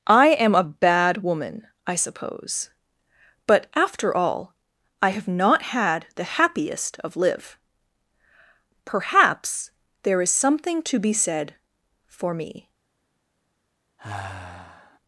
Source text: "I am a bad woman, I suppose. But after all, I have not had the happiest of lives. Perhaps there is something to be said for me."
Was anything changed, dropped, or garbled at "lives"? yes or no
yes